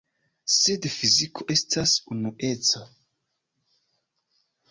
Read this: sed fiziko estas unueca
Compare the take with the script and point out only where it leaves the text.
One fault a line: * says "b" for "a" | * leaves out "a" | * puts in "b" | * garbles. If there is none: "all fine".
all fine